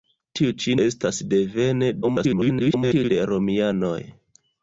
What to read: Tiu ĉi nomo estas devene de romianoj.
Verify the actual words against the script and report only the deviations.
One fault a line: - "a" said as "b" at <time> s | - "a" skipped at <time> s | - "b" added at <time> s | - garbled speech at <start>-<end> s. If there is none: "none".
- "nomo" skipped at 0.7 s
- garbled speech at 2.0-3.1 s